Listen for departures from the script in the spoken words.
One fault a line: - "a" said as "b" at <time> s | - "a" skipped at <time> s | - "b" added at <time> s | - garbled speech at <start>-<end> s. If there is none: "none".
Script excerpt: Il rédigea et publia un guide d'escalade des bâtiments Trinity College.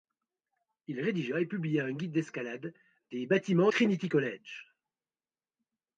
none